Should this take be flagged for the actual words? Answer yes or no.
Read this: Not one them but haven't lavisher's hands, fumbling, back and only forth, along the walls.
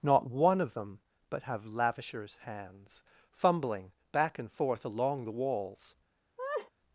yes